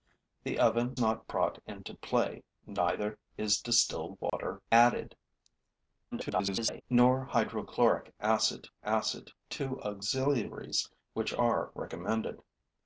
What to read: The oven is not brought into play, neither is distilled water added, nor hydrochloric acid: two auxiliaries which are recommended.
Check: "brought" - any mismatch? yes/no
no